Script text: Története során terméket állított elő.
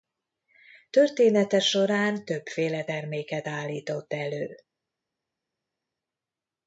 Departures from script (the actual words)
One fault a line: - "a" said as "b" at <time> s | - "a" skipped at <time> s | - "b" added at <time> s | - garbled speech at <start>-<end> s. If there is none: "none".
- "többféle" added at 2.2 s